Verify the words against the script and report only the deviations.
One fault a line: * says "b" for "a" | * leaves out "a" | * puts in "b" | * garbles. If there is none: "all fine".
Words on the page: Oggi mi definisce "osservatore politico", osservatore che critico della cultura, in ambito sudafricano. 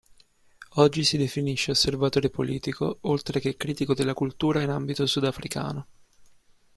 * says "si" for "mi"
* says "oltre" for "osservatore"